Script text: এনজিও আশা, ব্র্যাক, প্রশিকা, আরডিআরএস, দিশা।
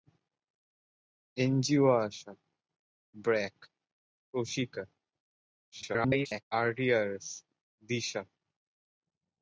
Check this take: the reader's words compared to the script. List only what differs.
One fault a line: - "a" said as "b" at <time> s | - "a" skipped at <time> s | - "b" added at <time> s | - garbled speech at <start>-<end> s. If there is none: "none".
- garbled speech at 5.7-6.4 s